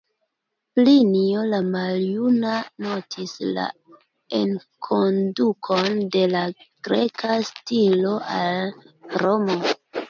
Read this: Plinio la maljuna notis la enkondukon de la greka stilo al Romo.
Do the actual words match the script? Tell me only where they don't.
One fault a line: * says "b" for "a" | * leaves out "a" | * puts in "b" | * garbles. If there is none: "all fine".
all fine